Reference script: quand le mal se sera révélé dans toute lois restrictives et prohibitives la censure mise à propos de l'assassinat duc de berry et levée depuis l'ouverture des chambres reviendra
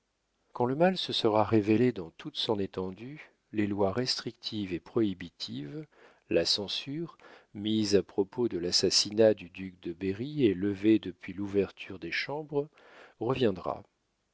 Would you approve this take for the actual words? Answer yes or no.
no